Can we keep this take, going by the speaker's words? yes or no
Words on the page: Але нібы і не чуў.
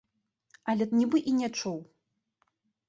yes